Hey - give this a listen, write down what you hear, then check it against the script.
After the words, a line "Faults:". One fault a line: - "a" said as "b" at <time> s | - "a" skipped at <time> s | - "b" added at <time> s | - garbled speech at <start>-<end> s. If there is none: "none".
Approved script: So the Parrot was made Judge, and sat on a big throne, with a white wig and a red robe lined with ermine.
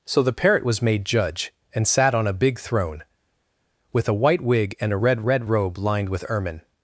So the Parrot was made Judge, and sat on a big throne, with a white wig and a red red robe lined with ermine.
Faults:
- "red" added at 5.2 s